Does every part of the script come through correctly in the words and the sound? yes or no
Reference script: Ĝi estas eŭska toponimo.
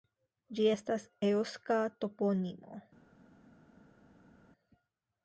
yes